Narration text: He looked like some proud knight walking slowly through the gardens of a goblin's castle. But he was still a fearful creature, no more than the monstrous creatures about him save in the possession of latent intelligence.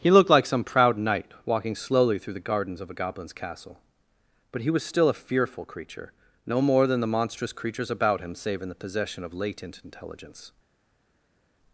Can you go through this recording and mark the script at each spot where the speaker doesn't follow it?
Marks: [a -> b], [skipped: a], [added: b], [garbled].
He looked like some proud knight walking slowly through the gardens of a goblin's castle. But he was still a fearful creature, no more than the monstrous creatures about him save in the possession of latent intelligence.